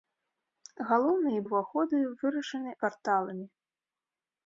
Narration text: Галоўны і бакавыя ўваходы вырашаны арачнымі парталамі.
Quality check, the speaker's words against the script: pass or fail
fail